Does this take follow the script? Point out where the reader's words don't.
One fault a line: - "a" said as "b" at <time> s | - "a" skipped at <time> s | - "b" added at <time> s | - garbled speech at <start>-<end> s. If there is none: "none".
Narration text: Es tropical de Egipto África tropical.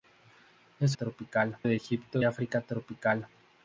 none